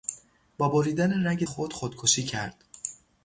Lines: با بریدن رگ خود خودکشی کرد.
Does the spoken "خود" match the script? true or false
true